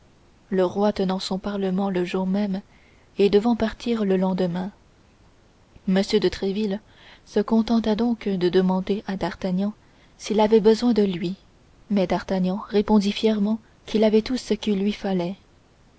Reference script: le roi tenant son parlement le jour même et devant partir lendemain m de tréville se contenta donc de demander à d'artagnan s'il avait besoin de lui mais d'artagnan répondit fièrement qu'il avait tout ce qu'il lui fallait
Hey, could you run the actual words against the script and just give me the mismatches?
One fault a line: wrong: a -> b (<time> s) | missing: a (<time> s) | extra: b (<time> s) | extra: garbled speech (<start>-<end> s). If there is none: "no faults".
extra: le (4.0 s)